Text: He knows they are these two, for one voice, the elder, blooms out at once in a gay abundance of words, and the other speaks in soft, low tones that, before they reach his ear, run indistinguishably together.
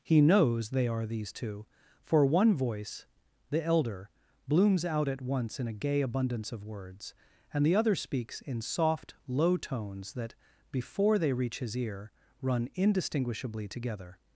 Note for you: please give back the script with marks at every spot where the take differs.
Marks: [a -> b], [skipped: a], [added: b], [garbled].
He knows they are these two, for one voice, the elder, blooms out at once in a gay abundance of words, and the other speaks in soft, low tones that, before they reach his ear, run indistinguishably together.